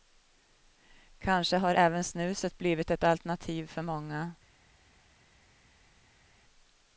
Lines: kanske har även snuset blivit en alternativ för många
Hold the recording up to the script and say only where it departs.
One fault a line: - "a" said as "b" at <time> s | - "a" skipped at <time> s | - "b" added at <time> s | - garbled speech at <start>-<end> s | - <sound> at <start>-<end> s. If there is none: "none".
- "en" said as "ett" at 2.9 s